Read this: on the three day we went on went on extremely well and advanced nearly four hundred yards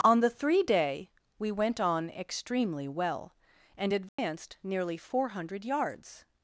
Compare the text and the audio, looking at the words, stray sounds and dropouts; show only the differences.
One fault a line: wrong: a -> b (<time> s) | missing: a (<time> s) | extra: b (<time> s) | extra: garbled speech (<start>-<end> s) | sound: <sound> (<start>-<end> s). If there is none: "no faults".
missing: went on (2.1 s)
sound: dropout (4.1-4.2 s)